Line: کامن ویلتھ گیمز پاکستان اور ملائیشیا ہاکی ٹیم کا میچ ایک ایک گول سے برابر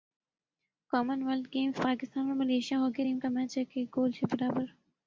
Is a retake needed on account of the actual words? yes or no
no